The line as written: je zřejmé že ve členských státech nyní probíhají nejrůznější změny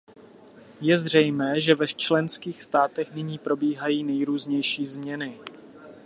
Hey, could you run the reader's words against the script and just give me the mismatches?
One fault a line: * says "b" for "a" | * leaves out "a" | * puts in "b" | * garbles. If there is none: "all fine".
all fine